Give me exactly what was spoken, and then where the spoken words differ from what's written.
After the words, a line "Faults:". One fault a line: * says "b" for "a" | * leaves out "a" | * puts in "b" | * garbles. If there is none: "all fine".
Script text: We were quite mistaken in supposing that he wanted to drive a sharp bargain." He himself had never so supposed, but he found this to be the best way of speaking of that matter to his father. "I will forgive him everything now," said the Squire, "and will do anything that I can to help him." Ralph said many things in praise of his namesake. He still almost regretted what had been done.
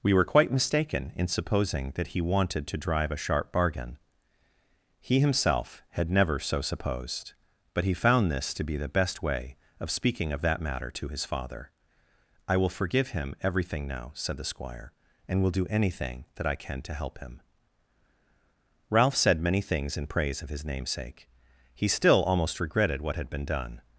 We were quite mistaken in supposing that he wanted to drive a sharp bargain." He himself had never so supposed, but he found this to be the best way of speaking of that matter to his father. "I will forgive him everything now," said the Squire, "and will do anything that I can to help him." Ralph said many things in praise of his namesake. He still almost regretted what had been done.
Faults:
all fine